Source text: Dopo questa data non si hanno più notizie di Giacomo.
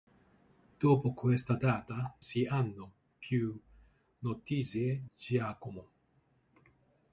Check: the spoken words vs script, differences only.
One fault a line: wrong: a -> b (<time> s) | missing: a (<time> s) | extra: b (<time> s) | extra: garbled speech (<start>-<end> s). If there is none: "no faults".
missing: non (2.2 s)
missing: di (5.0 s)